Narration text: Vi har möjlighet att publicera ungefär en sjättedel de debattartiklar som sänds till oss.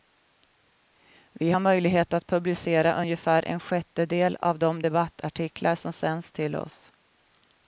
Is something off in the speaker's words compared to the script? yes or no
yes